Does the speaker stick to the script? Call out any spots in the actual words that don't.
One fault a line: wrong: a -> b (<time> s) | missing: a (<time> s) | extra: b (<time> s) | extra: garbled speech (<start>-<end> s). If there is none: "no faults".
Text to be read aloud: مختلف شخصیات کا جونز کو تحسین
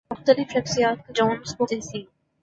no faults